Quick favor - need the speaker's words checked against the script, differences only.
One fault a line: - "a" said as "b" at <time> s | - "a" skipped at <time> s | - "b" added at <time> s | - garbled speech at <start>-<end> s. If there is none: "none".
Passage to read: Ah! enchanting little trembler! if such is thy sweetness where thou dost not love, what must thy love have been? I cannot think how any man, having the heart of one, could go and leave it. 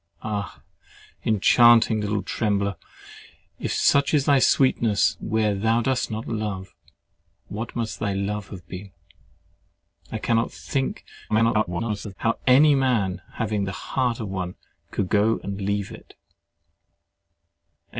- garbled speech at 11.3-12.2 s